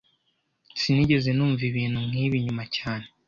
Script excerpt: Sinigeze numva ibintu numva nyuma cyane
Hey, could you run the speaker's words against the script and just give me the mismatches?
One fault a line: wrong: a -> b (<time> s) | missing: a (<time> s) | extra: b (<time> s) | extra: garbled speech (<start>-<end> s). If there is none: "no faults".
wrong: numva -> nk'ibi (2.1 s)